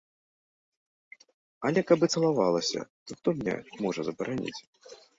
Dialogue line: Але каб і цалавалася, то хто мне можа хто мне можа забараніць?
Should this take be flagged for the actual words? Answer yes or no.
yes